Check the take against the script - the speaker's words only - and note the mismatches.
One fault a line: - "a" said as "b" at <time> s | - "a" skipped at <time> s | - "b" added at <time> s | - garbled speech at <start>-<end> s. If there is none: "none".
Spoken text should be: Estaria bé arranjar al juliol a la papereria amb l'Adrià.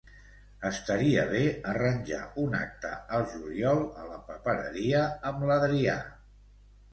- "un acte" added at 2.4 s